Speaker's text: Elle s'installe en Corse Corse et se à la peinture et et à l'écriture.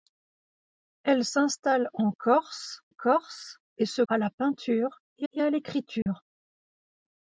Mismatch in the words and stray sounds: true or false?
true